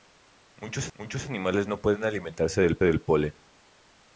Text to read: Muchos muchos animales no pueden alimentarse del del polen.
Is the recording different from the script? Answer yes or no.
no